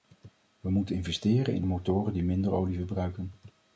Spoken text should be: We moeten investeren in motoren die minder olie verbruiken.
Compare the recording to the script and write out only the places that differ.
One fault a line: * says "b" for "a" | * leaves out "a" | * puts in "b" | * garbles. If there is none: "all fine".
all fine